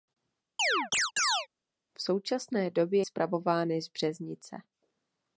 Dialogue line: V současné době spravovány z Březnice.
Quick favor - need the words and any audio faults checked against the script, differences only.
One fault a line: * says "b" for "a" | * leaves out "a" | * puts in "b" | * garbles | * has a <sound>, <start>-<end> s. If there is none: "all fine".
* has a chirp, 0.6-1.5 s